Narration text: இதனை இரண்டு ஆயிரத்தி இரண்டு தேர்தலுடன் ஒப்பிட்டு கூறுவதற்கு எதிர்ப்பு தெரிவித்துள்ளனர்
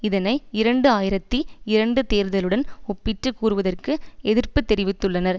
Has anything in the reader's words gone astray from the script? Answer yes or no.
no